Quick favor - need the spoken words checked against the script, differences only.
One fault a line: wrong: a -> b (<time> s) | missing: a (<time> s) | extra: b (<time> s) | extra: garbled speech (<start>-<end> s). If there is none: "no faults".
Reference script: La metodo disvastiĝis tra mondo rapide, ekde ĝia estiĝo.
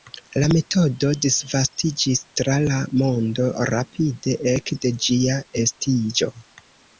extra: la (2.6 s)